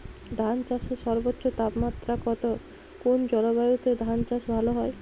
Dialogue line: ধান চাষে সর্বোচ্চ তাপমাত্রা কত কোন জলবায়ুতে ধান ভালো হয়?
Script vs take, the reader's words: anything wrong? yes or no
yes